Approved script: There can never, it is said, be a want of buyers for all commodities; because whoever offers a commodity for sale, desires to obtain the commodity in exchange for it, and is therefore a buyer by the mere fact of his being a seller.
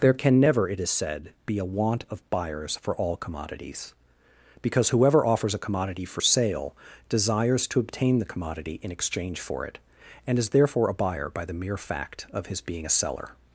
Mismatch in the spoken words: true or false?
false